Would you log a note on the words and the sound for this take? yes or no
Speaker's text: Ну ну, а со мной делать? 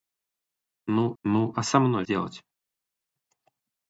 no